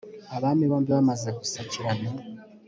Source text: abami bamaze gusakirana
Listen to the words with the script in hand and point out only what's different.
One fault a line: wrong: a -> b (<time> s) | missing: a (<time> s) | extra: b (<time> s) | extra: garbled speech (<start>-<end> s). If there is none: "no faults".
extra: bombi (0.7 s)